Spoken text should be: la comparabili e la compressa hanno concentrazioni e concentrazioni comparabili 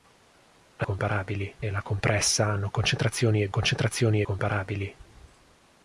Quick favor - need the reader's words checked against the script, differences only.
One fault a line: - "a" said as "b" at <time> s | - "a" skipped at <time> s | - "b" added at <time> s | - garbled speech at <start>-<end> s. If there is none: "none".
none